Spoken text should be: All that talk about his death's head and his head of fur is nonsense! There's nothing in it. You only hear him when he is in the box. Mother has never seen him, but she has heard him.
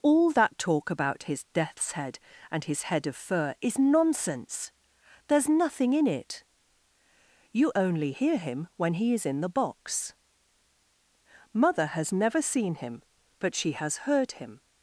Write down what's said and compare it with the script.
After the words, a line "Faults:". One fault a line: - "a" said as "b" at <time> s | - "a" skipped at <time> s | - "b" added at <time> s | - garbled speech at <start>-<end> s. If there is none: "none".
All that talk about his death's head and his head of fur is nonsense! There's nothing in it. You only hear him when he is in the box. Mother has never seen him, but she has heard him.
Faults:
none